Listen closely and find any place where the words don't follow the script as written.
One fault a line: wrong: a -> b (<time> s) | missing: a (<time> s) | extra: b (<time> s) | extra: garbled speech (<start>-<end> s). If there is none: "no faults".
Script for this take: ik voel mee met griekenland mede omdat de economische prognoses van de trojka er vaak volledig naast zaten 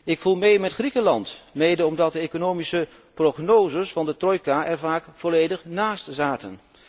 no faults